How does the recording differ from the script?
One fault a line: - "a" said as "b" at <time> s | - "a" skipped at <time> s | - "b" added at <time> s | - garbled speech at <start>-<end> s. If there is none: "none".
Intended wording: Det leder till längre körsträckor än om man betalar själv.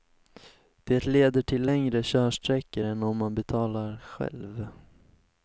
none